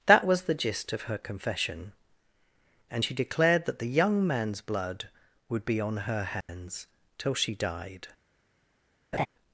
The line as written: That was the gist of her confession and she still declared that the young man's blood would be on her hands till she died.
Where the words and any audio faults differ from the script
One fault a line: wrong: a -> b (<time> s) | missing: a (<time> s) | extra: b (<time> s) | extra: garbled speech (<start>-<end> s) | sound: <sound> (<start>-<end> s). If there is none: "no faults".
missing: still (3.1 s)
sound: dropout (6.4-6.5 s)
sound: laugh (9.1-9.3 s)